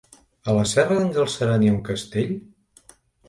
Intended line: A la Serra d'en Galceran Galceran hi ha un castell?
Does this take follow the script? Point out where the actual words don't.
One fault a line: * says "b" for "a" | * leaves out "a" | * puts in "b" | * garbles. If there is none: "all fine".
* leaves out "Galceran"